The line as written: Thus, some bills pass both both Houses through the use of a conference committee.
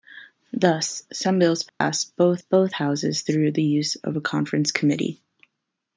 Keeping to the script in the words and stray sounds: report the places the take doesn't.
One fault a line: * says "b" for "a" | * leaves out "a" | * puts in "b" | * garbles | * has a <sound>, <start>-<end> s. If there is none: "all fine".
* has a dropout, 1.7-1.8 s